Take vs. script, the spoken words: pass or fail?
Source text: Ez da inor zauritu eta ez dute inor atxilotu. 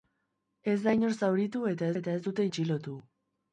fail